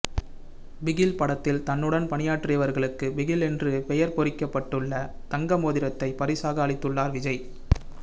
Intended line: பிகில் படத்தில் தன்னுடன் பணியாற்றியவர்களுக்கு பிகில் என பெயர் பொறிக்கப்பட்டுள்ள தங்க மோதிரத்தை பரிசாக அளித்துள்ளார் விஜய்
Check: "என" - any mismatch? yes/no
yes